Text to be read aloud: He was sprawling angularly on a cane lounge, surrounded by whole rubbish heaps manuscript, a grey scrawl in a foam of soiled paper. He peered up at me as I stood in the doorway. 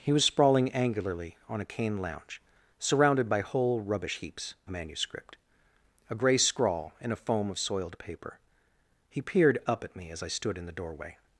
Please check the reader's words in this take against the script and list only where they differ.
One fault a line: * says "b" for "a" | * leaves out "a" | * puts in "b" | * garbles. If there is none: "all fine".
all fine